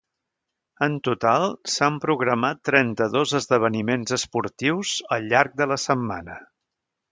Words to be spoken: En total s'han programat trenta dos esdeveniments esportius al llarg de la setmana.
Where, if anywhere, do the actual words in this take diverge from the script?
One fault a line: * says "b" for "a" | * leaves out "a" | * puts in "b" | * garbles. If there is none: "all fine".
all fine